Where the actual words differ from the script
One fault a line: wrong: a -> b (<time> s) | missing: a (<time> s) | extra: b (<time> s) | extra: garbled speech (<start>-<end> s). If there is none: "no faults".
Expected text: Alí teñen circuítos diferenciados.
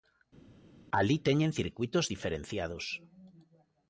no faults